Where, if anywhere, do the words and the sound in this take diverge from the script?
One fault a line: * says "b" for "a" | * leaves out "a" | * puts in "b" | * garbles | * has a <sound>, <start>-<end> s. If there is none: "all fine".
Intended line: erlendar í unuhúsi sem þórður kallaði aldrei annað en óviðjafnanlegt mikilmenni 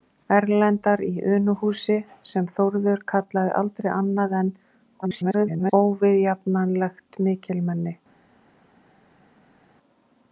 * garbles